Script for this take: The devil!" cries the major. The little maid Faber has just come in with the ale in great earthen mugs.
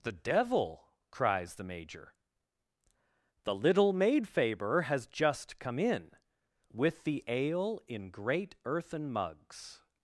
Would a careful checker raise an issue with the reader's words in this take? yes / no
no